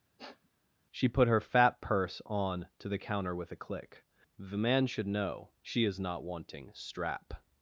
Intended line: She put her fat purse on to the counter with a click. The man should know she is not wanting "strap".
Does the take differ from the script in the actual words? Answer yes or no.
no